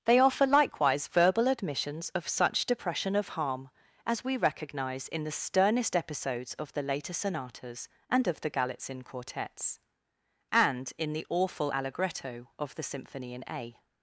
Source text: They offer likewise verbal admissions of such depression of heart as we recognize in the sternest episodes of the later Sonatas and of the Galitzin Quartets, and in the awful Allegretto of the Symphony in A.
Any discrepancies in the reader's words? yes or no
yes